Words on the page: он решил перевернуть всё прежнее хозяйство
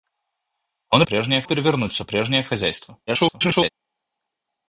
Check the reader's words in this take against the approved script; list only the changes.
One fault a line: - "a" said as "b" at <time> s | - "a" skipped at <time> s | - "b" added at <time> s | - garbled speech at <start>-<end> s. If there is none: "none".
- "решил" said as "прежнее" at 1.0 s
- garbled speech at 3.1-3.7 s